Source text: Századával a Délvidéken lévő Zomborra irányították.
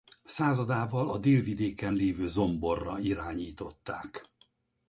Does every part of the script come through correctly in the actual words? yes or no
yes